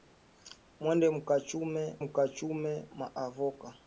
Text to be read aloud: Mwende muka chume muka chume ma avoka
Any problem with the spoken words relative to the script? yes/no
no